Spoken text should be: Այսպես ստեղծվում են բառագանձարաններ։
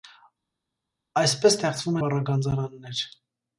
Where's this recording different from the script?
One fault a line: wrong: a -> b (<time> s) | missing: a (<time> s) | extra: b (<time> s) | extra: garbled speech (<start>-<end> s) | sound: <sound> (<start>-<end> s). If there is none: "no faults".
missing: են (2.0 s)